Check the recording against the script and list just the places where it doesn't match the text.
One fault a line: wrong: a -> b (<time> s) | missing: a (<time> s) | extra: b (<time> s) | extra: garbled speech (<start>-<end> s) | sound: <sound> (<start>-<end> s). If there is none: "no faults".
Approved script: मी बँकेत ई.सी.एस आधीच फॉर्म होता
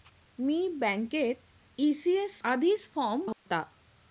sound: dropout (3.3-3.5 s)